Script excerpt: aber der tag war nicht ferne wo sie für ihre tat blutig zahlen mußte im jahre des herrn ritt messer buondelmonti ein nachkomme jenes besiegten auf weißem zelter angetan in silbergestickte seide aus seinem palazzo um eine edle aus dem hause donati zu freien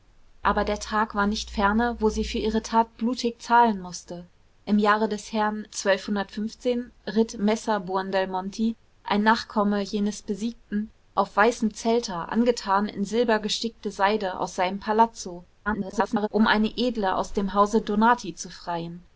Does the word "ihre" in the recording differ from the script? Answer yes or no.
no